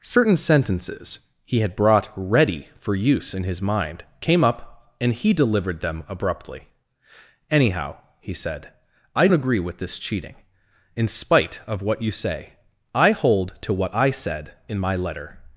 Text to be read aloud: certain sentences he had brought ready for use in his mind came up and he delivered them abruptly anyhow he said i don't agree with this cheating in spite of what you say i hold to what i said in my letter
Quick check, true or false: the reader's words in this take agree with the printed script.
false